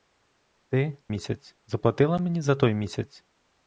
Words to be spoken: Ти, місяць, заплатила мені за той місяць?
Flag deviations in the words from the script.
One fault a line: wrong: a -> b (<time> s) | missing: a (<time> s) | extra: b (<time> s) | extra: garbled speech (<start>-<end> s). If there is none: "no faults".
no faults